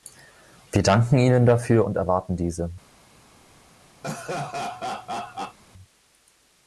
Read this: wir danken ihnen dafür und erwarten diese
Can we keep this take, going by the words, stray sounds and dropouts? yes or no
no